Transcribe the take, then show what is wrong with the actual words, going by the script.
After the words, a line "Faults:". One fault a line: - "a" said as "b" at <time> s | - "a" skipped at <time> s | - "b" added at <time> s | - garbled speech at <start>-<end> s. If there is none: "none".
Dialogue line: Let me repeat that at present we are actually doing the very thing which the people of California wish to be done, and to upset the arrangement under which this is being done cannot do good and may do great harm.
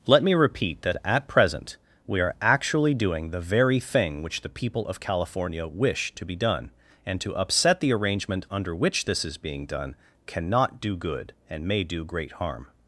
Let me repeat that at present we are actually doing the very thing which the people of California wish to be done, and to upset the arrangement under which this is being done cannot do good and may do great harm.
Faults:
none